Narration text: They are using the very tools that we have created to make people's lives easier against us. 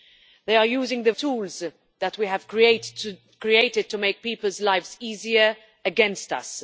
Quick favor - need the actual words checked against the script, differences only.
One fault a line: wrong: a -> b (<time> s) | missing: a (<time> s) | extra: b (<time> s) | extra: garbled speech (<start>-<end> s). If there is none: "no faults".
missing: very (1.1 s)